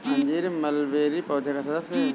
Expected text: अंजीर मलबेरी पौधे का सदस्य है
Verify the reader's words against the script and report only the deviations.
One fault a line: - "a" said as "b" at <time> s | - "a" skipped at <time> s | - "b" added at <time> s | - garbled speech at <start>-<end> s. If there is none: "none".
none